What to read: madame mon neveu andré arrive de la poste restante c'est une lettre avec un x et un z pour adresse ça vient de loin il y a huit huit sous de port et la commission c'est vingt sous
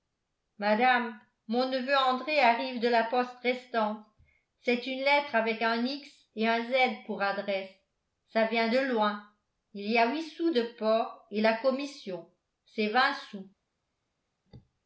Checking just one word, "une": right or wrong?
right